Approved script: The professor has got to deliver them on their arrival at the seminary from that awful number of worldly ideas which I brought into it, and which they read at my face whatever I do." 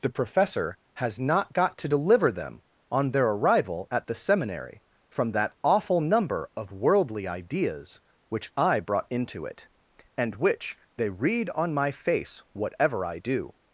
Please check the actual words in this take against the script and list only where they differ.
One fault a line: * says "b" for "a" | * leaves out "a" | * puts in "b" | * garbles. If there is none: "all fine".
* puts in "not"
* says "on" for "at"